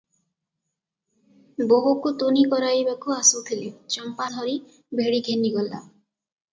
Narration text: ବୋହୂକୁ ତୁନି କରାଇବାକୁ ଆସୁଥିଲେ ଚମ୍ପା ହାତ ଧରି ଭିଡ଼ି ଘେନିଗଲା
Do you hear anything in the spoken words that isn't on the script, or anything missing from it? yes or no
yes